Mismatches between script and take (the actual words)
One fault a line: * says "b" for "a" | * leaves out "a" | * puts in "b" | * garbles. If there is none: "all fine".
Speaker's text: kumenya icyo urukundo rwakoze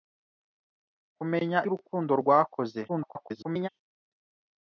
* leaves out "icyo"
* garbles